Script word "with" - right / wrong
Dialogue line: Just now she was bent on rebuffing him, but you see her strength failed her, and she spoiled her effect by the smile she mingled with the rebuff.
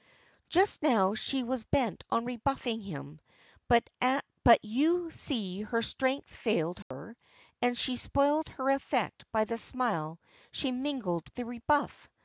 wrong